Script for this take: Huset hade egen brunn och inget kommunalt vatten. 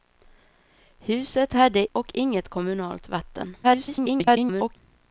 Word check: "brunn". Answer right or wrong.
wrong